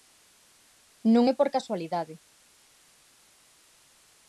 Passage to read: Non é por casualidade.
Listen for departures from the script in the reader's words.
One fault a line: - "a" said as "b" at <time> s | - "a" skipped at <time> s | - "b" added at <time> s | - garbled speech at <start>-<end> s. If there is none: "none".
none